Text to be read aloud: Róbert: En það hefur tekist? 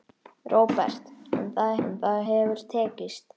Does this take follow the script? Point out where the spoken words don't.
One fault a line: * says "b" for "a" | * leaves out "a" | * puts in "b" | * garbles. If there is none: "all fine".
* puts in "En það"